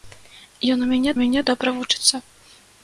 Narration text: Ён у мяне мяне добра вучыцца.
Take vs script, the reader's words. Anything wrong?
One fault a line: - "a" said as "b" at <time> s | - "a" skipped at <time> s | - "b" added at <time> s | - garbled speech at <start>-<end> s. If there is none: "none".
none